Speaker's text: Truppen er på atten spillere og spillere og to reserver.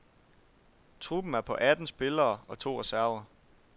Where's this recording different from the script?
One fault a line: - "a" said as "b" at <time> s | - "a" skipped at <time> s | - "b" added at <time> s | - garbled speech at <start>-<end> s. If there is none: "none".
- "spillere og" skipped at 2.6 s